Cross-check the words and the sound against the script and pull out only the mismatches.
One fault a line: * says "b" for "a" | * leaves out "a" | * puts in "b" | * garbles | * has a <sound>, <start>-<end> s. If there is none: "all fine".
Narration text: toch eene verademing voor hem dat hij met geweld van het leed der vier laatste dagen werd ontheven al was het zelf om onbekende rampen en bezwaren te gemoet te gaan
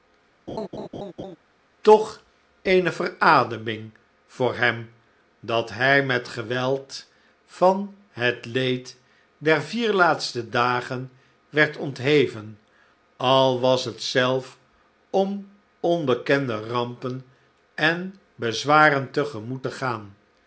* has a laugh, 0.5-1.4 s